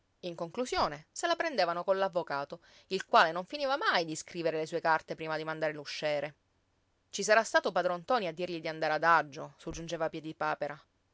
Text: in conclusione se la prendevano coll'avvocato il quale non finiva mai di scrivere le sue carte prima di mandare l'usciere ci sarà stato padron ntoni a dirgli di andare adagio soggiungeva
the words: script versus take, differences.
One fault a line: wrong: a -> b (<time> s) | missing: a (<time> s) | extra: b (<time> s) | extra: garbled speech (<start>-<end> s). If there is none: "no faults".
no faults